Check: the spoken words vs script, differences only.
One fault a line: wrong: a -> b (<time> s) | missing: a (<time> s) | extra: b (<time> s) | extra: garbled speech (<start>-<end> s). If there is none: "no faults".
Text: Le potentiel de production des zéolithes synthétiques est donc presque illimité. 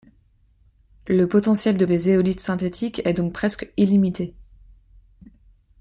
missing: production (1.9 s)